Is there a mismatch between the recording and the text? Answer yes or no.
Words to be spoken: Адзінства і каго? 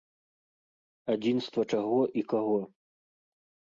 yes